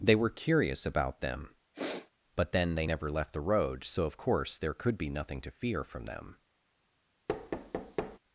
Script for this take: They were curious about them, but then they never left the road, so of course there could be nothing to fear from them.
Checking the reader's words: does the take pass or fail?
pass